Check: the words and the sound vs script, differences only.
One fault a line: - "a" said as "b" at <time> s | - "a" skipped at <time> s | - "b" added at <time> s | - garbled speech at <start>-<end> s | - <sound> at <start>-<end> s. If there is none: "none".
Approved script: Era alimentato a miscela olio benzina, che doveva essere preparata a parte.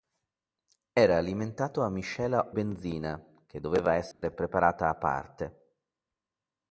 - "olio" skipped at 2.5 s
- dropout at 4.1-4.2 s